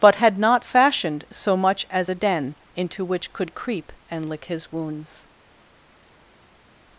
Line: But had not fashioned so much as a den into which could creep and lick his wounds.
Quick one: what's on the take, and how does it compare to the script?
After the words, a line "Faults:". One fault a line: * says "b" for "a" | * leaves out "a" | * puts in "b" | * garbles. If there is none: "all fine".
But had not fashioned so much as a den into which could creep and lick his wounds.
Faults:
all fine